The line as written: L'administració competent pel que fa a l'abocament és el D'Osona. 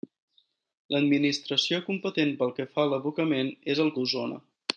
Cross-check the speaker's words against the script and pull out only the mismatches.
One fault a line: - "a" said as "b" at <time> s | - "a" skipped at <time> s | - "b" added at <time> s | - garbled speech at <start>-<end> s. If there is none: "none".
none